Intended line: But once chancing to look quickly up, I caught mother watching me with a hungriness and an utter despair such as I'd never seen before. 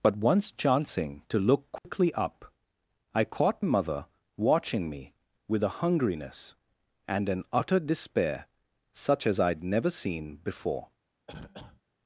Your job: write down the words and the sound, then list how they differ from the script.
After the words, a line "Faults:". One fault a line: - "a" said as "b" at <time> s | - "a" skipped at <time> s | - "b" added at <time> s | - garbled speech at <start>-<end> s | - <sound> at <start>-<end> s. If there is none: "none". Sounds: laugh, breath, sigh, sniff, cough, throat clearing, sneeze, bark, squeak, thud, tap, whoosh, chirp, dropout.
But once chancing to look quickly up, I caught mother watching me with a hungriness and an utter despair such as I'd never seen before.
Faults:
- dropout at 1.8-1.8 s
- cough at 11.3-11.8 s